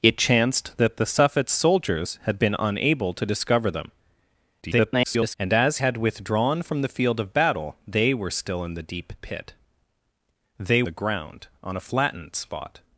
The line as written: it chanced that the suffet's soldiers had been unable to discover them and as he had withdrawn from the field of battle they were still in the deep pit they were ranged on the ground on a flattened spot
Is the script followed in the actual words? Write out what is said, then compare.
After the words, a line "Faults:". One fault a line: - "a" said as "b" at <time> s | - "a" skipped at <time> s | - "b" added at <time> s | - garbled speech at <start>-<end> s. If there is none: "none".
it chanced that the suffet's soldiers had been unable to discover them [garbled] and as had withdrawn from the field of battle they were still in the deep pit they the ground on a flattened spot
Faults:
- garbled speech at 4.6-5.3 s
- "he" skipped at 5.8 s
- "were ranged on" skipped at 10.8 s